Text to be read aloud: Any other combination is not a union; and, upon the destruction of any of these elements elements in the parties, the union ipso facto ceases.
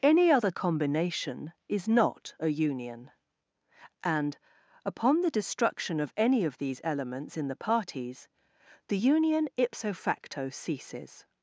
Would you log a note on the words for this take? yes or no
yes